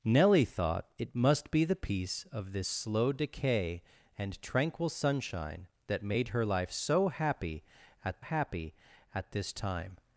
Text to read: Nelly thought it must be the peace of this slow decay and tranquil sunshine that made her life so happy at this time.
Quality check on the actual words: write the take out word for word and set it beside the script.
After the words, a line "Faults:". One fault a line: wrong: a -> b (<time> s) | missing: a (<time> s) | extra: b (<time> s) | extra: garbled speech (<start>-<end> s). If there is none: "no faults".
Nelly thought it must be the peace of this slow decay and tranquil sunshine that made her life so happy at happy at this time.
Faults:
extra: happy at (8.2 s)